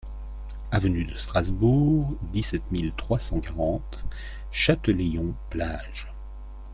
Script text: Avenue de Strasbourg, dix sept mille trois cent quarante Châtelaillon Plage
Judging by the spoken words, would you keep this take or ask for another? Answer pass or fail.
pass